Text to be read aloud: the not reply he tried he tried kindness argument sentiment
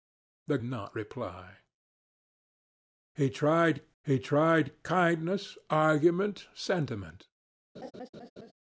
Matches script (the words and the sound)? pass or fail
fail